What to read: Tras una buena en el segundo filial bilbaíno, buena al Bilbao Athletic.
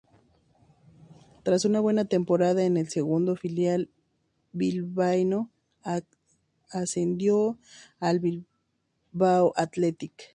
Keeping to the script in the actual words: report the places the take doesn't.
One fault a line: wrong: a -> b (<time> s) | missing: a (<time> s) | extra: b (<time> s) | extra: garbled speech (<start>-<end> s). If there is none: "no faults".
extra: temporada (2.0 s)
wrong: buena -> ascendió (6.7 s)